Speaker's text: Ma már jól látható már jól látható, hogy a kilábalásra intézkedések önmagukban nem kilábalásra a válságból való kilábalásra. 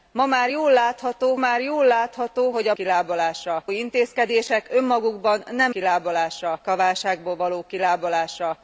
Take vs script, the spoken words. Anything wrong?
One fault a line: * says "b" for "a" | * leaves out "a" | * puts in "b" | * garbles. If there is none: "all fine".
all fine